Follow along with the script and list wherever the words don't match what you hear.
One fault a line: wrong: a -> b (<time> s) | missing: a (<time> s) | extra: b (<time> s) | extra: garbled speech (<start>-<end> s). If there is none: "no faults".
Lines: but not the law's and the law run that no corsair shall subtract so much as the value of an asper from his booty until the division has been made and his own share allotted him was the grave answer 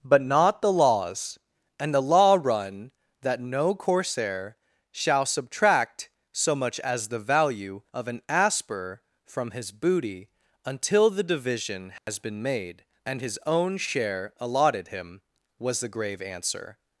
no faults